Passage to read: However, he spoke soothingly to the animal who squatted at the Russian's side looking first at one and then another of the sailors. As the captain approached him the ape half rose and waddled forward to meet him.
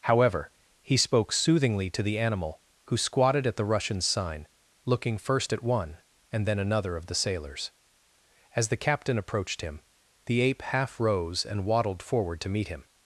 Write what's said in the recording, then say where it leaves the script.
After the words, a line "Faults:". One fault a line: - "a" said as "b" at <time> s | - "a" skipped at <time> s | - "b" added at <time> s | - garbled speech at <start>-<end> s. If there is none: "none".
However, he spoke soothingly to the animal who squatted at the Russian's sign looking first at one and then another of the sailors. As the captain approached him the ape half rose and waddled forward to meet him.
Faults:
- "side" said as "sign" at 4.0 s